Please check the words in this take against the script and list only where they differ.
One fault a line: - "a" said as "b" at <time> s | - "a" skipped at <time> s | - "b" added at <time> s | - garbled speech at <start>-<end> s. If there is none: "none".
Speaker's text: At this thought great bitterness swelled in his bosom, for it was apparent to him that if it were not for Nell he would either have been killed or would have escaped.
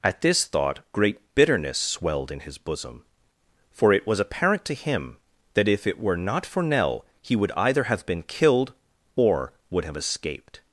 none